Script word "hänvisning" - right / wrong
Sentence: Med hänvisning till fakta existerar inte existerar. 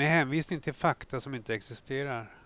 right